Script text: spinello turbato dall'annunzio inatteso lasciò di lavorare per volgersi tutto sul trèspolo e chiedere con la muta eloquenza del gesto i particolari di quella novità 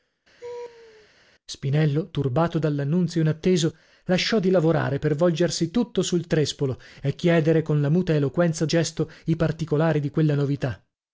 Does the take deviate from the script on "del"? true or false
true